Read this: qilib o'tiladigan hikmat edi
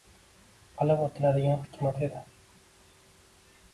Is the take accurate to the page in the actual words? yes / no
yes